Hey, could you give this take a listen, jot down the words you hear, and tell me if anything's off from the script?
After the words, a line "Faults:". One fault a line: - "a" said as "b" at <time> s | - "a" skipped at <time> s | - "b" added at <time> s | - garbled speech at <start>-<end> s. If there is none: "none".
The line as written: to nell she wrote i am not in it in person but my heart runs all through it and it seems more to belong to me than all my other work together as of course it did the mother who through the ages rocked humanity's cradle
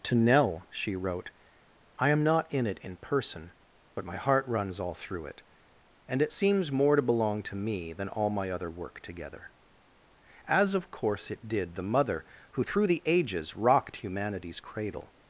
to nell she wrote i am not in it in person but my heart runs all through it and it seems more to belong to me than all my other work together as of course it did the mother who through the ages rocked humanity's cradle
Faults:
none